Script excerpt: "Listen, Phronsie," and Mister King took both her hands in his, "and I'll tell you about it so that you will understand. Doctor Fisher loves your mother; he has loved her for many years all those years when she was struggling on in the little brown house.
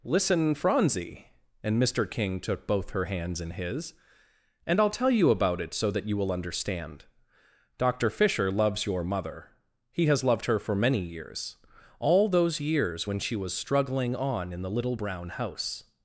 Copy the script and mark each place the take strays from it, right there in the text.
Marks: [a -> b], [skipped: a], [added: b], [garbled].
"Listen, Phronsie," and Mister King took both her hands in his, "and I'll tell you about it so that you will understand. Doctor Fisher loves your mother; he has loved her for many years all those years when she was struggling on in the little brown house.